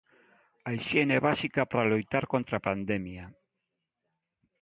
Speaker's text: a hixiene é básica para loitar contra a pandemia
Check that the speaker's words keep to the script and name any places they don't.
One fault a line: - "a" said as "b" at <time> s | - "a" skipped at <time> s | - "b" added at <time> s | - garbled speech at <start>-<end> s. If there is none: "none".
none